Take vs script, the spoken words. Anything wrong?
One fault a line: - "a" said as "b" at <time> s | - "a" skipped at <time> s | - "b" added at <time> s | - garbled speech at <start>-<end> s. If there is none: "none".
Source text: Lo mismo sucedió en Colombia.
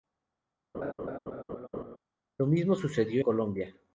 - "en" skipped at 3.2 s